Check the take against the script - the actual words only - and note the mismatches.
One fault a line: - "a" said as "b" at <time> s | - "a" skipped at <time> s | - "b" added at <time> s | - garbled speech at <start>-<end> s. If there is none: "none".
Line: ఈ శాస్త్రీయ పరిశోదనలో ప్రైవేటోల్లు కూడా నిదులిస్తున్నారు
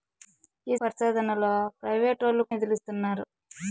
- "శాస్త్రీయ" skipped at 0.8 s
- "కూడా" skipped at 2.5 s